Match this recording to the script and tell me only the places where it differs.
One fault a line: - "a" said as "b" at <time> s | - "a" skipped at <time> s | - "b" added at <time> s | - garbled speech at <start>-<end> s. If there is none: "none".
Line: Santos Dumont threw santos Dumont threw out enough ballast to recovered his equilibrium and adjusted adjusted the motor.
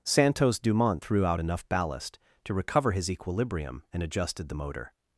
- "santos Dumont threw" skipped at 1.3 s
- "recovered" said as "recover" at 2.5 s
- "adjusted" skipped at 4.5 s